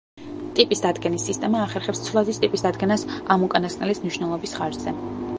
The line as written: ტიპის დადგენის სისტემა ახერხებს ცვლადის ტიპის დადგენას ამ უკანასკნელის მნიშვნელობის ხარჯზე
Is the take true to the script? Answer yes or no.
yes